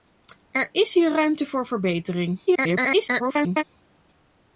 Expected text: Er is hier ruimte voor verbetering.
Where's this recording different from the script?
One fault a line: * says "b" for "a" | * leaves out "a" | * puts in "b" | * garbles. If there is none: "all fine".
* garbles